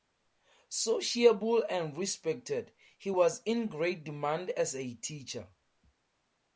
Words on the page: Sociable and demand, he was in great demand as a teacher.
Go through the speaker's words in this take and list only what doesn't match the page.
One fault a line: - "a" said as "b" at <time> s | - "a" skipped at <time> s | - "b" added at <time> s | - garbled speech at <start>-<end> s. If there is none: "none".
- "demand" said as "respected" at 1.9 s